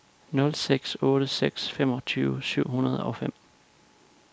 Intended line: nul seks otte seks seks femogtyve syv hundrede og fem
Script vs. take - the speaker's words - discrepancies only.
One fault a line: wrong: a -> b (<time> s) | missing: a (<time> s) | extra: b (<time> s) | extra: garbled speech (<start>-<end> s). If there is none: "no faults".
missing: seks (1.7 s)